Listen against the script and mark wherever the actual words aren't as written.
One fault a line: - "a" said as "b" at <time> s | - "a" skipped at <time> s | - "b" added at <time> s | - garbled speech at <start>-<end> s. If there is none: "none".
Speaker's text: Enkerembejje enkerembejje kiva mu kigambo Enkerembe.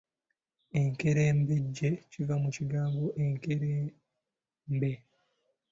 - "enkerembejje" skipped at 1.9 s